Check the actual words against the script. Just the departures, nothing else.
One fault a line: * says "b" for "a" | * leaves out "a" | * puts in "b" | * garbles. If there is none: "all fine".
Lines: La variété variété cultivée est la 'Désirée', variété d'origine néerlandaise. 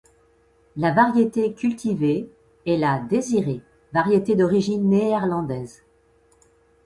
* leaves out "variété"